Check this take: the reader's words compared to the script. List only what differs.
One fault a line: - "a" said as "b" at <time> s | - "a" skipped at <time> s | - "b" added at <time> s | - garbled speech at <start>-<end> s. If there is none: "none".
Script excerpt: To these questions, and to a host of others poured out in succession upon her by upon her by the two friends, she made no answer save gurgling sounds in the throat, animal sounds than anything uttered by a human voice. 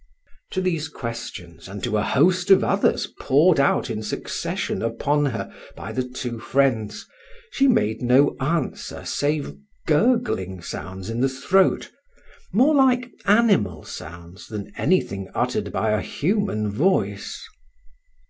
- "upon her by" skipped at 5.9 s
- "more like" added at 12.5 s